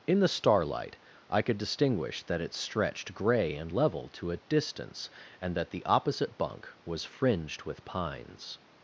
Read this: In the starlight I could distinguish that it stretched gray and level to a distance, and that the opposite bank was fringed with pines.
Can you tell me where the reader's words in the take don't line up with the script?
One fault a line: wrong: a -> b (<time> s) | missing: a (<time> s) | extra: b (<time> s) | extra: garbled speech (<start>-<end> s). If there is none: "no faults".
wrong: bank -> bunk (6.4 s)